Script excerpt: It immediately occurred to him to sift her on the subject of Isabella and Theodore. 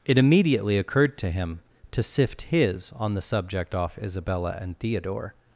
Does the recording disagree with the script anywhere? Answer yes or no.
yes